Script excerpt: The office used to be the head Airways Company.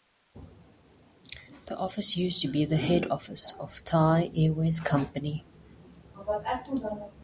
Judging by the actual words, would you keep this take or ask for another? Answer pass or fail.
fail